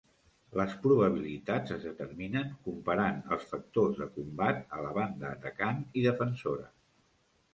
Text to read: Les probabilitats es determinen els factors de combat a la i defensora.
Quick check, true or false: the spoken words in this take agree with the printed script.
false